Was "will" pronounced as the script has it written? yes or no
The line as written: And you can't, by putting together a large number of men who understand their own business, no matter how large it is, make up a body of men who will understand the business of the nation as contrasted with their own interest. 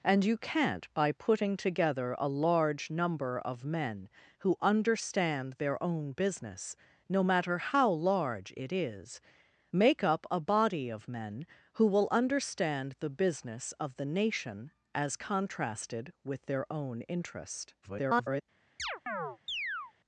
yes